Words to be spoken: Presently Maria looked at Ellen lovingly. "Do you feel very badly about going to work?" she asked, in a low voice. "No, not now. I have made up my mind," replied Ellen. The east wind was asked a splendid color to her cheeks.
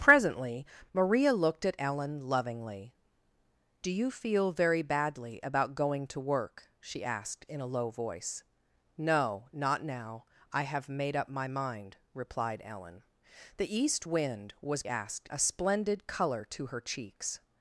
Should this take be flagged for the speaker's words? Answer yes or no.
no